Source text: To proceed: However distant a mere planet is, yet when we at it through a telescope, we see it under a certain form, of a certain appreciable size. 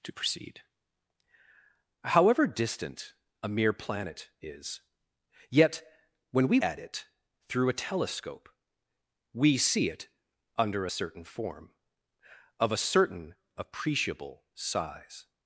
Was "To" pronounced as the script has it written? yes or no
yes